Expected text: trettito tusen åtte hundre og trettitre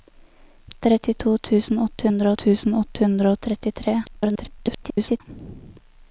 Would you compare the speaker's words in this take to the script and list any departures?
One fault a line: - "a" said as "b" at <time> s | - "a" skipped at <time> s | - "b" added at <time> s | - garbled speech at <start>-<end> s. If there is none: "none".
- "tusen åtte hundre" added at 2.4 s
- garbled speech at 4.1-5.2 s